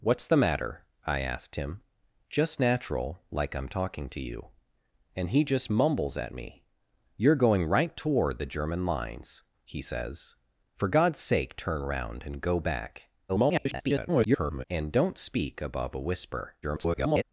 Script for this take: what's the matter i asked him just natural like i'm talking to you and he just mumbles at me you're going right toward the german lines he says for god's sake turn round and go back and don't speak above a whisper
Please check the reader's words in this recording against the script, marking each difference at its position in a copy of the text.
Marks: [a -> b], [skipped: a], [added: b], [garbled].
what's the matter i asked him just natural like i'm talking to you and he just mumbles at me you're going right toward the german lines he says for god's sake turn round and go back [garbled] and don't speak above a whisper [garbled]